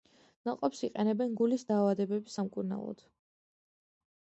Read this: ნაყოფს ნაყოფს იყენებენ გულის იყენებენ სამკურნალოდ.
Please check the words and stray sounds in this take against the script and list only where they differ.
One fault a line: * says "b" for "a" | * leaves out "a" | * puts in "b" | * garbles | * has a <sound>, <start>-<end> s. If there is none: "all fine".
* leaves out "ნაყოფს"
* says "დაავადებების" for "იყენებენ"